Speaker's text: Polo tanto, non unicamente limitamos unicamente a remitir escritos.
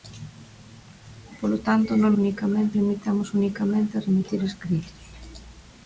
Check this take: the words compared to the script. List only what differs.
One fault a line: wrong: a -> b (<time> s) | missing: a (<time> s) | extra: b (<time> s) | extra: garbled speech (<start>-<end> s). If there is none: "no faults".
no faults